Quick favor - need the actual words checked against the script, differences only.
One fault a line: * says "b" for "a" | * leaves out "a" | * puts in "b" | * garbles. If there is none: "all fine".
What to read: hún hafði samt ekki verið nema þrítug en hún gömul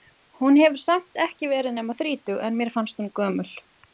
* says "hefur" for "hafði"
* puts in "mér fannst"